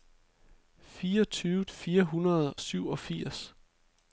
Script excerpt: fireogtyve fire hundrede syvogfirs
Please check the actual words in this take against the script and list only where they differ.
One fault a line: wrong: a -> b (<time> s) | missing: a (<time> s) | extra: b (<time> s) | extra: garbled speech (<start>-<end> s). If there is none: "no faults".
no faults